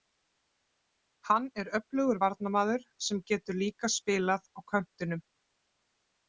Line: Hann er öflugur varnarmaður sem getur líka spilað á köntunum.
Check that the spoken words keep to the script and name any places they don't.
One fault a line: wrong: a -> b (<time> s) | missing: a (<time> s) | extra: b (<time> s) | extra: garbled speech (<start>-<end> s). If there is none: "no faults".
no faults